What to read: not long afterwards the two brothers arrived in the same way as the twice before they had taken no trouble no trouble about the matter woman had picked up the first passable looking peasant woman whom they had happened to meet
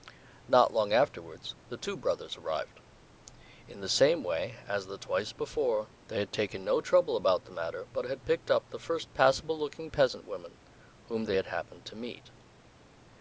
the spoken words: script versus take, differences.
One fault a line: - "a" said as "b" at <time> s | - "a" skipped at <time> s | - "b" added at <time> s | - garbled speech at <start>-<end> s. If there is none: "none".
- "no trouble" skipped at 7.2 s
- "woman" said as "but" at 7.8 s